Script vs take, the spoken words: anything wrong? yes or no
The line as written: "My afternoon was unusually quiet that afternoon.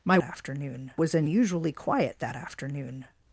no